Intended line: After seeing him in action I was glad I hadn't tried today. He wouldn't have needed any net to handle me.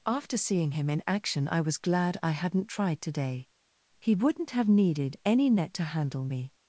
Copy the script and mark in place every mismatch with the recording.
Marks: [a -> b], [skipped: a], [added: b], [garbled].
After seeing him in action I was glad I hadn't tried today. He wouldn't have needed any net to handle me.